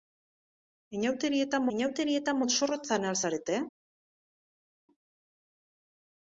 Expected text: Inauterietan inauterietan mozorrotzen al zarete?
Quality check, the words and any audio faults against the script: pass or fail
pass